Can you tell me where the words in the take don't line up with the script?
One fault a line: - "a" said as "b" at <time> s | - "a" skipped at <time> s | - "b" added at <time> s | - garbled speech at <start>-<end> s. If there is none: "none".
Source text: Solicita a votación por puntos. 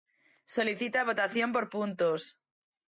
none